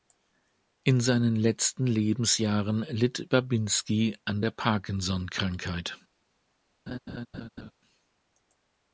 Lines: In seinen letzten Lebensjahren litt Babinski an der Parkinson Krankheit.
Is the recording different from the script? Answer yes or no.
no